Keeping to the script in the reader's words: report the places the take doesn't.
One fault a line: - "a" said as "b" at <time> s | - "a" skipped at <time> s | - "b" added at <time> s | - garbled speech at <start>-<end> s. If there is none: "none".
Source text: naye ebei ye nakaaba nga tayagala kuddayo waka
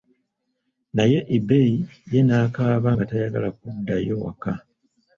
none